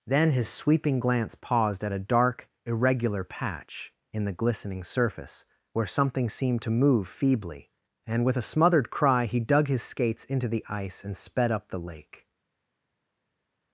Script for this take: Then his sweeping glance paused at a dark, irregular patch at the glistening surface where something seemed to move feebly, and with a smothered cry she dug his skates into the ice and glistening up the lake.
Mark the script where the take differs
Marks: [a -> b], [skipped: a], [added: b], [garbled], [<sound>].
Then his sweeping glance paused at a dark, irregular patch [at -> in] the glistening surface where something seemed to move feebly, and with a smothered cry [she -> he] dug his skates into the ice and [glistening -> sped] up the lake.